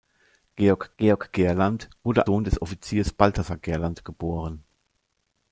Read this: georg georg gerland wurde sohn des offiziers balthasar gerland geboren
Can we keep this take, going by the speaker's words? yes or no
yes